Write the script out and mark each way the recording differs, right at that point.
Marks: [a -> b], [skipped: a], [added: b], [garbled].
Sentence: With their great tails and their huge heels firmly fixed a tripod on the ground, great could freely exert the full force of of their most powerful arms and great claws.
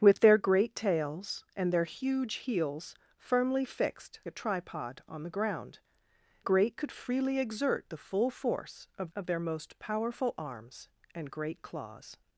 With their great tails and their huge heels firmly fixed a tripod on the ground, great could freely exert the full force of of their most powerful arms and great claws.